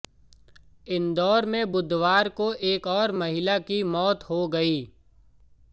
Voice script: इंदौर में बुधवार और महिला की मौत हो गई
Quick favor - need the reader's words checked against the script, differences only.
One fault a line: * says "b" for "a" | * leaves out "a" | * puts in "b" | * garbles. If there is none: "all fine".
* puts in "को एक"